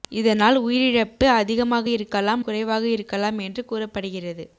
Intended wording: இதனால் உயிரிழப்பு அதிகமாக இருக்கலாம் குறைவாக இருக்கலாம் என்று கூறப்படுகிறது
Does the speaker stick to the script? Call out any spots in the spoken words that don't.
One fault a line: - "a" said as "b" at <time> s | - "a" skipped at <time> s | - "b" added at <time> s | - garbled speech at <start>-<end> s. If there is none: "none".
none